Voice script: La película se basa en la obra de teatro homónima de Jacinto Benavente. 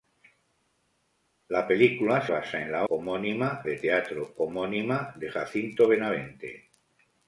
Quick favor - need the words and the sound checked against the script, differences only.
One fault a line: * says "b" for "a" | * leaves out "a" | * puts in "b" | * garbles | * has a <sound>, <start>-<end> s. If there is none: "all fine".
* leaves out "se"
* says "homónima" for "obra"